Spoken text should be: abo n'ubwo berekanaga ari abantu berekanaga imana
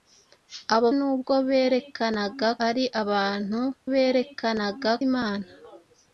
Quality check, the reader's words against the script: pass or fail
pass